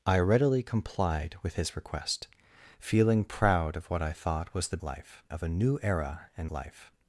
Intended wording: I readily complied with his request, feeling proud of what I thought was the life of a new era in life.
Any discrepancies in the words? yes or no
no